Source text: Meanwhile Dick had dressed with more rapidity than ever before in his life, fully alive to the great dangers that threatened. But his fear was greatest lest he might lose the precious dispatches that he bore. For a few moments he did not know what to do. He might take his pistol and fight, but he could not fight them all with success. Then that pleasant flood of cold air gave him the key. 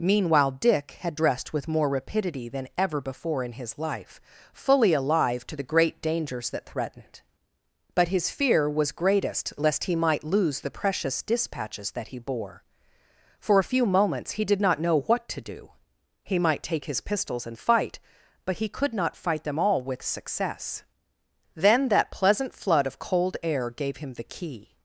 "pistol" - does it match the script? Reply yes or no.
no